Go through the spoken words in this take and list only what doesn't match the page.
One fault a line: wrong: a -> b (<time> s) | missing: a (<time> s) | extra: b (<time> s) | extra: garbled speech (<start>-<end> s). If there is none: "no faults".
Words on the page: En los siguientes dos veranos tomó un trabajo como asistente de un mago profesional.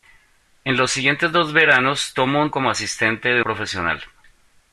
missing: trabajo (2.5 s)
missing: un mago (3.4 s)